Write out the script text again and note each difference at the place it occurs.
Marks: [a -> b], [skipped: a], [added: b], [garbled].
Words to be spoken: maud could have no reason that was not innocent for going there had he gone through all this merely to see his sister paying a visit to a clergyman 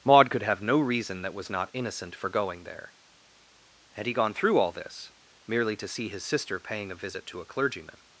maud could have no reason that was not innocent for going there had he gone through all this merely to see his sister paying a visit to a clergyman